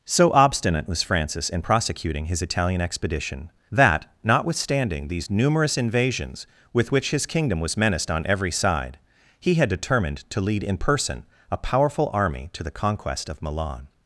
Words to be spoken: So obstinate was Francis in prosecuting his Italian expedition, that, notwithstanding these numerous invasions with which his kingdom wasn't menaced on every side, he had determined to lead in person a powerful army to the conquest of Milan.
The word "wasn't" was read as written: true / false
false